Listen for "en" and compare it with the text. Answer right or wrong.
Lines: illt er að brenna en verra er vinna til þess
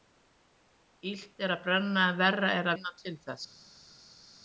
right